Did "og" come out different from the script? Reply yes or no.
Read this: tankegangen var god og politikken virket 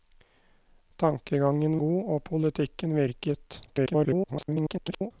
no